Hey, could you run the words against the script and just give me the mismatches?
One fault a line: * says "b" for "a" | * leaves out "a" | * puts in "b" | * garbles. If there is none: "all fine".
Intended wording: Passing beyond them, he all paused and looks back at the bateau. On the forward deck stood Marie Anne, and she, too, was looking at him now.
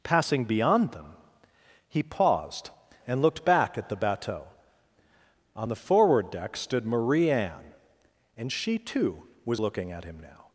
* leaves out "all"
* says "looked" for "looks"